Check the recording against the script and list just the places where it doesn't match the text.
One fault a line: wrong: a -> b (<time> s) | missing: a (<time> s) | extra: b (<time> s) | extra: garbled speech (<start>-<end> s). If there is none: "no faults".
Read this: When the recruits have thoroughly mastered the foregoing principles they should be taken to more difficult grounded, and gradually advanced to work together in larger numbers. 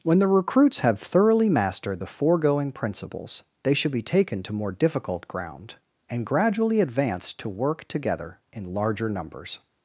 wrong: grounded -> ground (5.3 s)